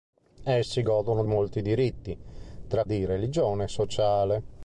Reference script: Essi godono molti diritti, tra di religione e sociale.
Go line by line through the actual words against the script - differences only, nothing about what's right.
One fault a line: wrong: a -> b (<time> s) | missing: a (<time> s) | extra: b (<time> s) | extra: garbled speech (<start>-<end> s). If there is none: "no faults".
no faults